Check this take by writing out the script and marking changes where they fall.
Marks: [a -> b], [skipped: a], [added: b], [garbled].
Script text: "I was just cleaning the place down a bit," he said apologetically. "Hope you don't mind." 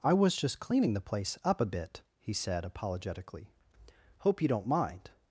"I was just cleaning the place [down -> up] a bit," he said apologetically. "Hope you don't mind."